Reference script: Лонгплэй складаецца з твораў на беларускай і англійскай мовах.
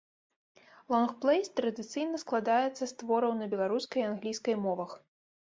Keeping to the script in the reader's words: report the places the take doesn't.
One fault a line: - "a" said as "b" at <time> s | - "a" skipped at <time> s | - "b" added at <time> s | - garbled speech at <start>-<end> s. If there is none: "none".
- "традыцыйна" added at 1.6 s